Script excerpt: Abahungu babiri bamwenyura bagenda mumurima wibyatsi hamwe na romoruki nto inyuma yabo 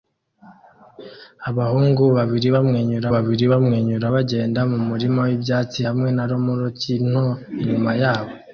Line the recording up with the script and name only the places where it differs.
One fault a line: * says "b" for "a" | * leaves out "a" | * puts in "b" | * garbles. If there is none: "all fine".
* puts in "babiri bamwenyura"